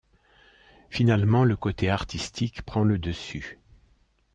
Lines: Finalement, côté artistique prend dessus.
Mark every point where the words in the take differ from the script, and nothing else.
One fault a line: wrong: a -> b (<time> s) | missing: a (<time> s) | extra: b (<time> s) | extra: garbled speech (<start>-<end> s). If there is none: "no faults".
extra: le (1.4 s)
extra: le (2.8 s)